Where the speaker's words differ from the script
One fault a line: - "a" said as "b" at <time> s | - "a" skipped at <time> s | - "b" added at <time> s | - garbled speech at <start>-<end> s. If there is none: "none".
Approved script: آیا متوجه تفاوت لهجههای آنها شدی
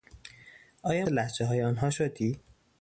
- "متوجه تفاوت" skipped at 1.1 s